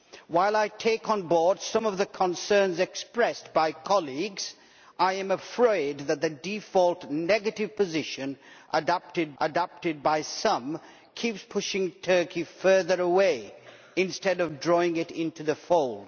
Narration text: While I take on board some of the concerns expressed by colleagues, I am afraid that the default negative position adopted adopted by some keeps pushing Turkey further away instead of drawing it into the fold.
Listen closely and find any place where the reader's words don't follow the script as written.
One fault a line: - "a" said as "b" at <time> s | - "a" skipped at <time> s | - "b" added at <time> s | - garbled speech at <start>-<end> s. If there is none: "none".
none